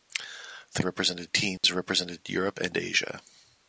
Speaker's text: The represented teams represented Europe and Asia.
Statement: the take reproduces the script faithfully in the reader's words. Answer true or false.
true